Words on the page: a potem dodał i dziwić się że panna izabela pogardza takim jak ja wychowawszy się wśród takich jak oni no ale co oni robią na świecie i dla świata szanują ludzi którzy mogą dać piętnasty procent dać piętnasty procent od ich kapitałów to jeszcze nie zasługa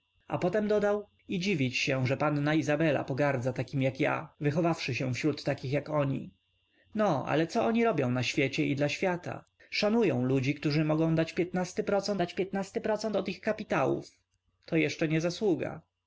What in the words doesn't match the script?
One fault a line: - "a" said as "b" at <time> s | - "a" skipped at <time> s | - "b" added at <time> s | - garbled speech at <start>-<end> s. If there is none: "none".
none